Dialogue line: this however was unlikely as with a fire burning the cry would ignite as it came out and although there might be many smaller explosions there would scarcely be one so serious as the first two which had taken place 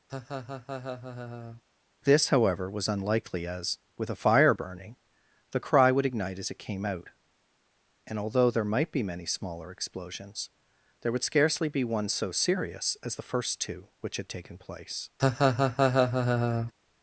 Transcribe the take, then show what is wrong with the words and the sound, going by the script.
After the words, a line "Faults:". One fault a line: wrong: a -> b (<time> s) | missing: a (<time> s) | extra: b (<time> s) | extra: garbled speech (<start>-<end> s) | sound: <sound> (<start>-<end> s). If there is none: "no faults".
this however was unlikely as with a fire burning the cry would ignite as it came out and although there might be many smaller explosions there would scarcely be one so serious as the first two which had taken place
Faults:
sound: laugh (0.1-1.6 s)
sound: laugh (15.2-16.7 s)